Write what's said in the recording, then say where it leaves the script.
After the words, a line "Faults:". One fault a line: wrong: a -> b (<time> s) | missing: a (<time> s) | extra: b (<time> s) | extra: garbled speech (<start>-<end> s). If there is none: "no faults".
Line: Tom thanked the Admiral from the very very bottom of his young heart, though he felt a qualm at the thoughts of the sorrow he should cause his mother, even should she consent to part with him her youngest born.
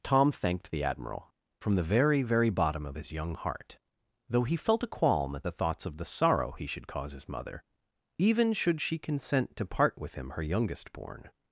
Tom thanked the Admiral from the very very bottom of his young heart, though he felt a qualm at the thoughts of the sorrow he should cause his mother, even should she consent to part with him her youngest born.
Faults:
no faults